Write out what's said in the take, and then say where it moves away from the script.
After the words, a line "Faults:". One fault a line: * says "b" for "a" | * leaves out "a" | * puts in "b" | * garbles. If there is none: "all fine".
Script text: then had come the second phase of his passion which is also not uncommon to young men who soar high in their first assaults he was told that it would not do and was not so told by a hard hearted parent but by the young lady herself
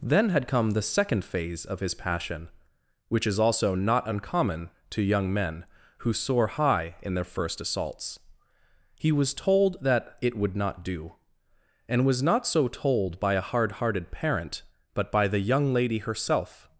then had come the second phase of his passion which is also not uncommon to young men who soar high in their first assaults he was told that it would not do and was not so told by a hard hearted parent but by the young lady herself
Faults:
all fine